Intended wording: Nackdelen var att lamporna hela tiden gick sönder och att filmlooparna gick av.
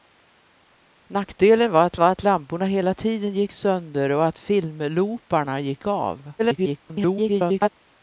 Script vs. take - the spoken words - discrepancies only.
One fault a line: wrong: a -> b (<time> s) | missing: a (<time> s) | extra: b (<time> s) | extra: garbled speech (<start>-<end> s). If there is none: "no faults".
extra: var att (2.0 s)
extra: garbled speech (6.4-7.7 s)